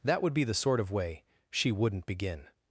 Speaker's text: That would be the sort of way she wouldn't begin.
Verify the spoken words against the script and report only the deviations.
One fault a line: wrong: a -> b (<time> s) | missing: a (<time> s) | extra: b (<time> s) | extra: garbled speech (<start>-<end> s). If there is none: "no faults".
no faults